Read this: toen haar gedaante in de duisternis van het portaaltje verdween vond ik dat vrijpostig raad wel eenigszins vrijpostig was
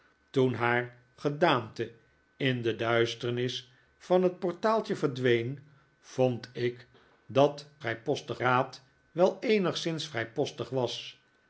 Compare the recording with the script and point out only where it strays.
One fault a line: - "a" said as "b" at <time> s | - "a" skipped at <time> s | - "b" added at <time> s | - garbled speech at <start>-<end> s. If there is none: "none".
none